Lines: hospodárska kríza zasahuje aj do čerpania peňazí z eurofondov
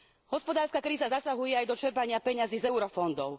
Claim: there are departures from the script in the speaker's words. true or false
false